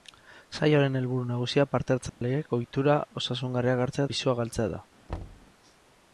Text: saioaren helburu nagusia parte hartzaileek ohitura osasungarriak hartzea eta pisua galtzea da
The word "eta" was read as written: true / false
false